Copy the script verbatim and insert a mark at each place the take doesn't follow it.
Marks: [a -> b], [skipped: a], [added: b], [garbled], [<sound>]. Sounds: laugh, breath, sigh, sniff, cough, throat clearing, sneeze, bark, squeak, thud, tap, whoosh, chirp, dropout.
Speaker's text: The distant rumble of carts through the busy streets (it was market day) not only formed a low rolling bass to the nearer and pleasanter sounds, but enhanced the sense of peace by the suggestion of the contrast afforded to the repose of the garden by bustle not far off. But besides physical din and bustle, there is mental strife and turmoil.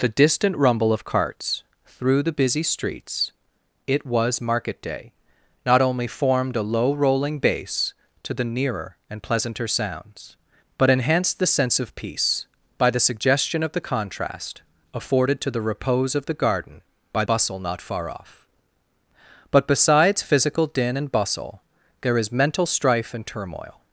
The distant rumble of carts through the busy streets (it was market day) not only formed a low rolling bass to the nearer and pleasanter sounds, but enhanced the sense of peace by the suggestion of the contrast afforded to the repose of the garden by bustle not far off. But besides physical din and bustle, there is mental strife and turmoil.